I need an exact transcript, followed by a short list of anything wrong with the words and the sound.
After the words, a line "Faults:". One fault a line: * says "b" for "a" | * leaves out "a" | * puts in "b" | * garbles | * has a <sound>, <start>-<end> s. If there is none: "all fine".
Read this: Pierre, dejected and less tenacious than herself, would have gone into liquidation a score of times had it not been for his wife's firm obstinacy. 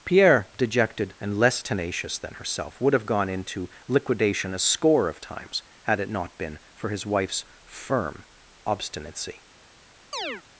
Pierre, dejected and less tenacious than herself, would have gone into liquidation a score of times had it not been for his wife's firm obstinacy.
Faults:
* has a chirp, 10.1-10.4 s